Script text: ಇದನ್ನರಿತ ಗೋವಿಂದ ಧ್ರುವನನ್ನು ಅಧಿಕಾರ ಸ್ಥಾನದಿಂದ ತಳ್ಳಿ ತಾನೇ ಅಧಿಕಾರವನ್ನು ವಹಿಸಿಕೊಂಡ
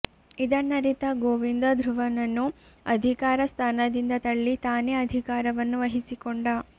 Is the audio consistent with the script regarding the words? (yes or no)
yes